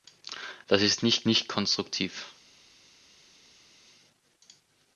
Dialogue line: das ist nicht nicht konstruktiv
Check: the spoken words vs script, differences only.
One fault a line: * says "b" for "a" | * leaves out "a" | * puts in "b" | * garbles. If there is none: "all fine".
all fine